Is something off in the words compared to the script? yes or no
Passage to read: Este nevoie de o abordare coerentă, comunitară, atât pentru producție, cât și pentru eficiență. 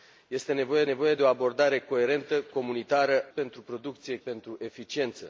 yes